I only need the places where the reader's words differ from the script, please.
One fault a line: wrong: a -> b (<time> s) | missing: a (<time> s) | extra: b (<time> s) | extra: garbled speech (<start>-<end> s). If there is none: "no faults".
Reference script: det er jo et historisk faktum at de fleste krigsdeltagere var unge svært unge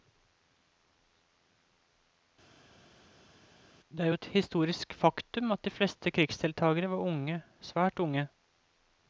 no faults